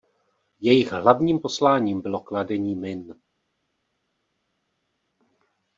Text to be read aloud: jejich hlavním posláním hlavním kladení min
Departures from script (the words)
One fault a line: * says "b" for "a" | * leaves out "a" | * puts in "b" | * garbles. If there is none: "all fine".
* says "bylo" for "hlavním"